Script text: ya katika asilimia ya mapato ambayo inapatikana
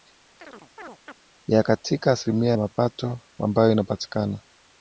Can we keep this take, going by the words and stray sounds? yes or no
no